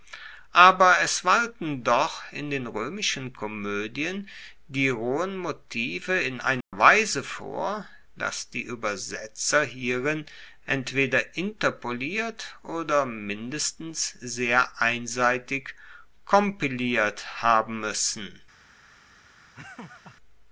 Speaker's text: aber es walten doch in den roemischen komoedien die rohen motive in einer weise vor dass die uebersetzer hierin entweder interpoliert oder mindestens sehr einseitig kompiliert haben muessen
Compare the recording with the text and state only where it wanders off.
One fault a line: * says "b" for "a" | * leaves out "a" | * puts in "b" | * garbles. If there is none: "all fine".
all fine